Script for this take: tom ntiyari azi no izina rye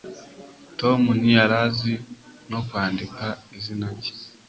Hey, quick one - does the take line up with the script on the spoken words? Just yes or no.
no